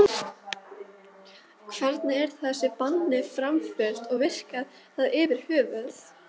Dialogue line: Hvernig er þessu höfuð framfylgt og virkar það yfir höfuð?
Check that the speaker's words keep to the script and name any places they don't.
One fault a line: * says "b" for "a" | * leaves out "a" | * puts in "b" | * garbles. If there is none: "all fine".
* says "banni" for "höfuð"